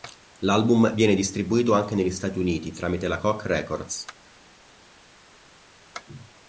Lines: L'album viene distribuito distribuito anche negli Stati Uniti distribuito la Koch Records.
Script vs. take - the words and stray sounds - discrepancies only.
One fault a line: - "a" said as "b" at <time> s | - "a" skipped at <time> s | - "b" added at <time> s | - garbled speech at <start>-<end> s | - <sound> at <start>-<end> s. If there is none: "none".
- "distribuito" skipped at 1.7 s
- "distribuito" said as "tramite" at 2.7 s